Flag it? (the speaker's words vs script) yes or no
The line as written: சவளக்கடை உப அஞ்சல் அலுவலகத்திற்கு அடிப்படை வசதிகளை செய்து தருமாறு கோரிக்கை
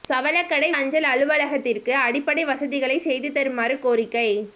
yes